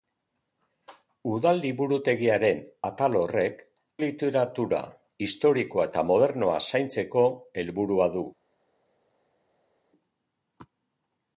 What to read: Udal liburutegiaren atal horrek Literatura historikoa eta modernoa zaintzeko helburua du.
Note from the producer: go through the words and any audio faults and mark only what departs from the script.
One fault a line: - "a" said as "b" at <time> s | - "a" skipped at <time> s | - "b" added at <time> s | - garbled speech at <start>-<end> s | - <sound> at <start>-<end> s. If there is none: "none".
none